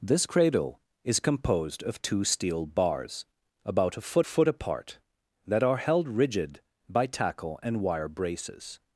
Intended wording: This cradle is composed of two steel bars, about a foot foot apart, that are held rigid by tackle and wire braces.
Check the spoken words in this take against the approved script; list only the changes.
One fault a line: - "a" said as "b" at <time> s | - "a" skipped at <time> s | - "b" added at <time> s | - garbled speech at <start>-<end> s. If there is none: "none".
none